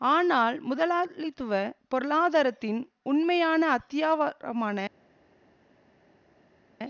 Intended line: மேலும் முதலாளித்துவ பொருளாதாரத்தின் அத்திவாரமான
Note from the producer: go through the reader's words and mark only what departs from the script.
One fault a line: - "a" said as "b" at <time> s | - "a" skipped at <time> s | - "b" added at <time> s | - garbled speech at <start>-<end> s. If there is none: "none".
- "மேலும்" said as "ஆனால்" at 0.0 s
- "உண்மையான" added at 3.0 s